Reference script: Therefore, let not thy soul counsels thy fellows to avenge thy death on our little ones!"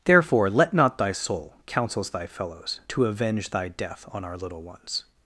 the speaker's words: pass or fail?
pass